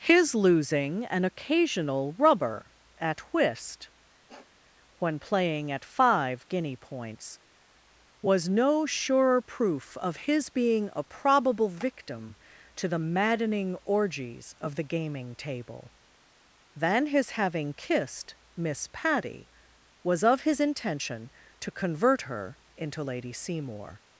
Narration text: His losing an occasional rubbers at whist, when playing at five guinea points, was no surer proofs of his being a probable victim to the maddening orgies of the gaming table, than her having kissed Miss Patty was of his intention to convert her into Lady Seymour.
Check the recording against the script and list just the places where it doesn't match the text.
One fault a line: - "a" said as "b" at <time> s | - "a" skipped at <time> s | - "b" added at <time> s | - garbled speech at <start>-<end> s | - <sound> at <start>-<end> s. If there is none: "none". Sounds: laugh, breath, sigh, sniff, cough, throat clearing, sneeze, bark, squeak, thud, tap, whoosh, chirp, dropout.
- "rubbers" said as "rubber" at 2.1 s
- sniff at 4.3-4.6 s
- "proofs" said as "proof" at 9.4 s
- "her" said as "his" at 17.1 s